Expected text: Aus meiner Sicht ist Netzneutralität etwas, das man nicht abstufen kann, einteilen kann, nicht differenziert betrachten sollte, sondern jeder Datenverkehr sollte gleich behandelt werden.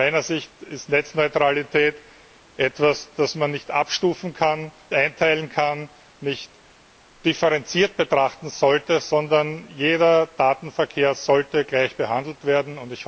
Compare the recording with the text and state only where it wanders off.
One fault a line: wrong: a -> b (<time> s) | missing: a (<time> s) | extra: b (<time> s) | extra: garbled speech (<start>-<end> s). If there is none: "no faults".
no faults